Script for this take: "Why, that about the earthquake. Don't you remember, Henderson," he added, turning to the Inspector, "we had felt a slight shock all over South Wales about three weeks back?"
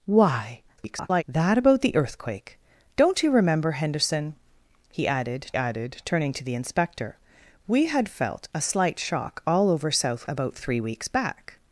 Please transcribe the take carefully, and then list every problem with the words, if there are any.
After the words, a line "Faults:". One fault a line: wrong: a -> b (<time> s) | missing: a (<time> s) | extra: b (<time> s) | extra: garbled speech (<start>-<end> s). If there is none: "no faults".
"Why, [garbled] that about the earthquake. Don't you remember, Henderson," he added added, turning to the Inspector, "we had felt a slight shock all over South About three weeks back?"
Faults:
extra: garbled speech (0.8-1.2 s)
extra: added (5.6 s)
missing: Wales (10.3 s)